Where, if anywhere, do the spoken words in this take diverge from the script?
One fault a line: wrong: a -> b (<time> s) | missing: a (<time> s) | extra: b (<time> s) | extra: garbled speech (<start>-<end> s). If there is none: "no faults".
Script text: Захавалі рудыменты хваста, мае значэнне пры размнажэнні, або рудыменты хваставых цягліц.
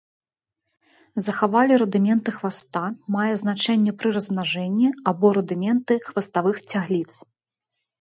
no faults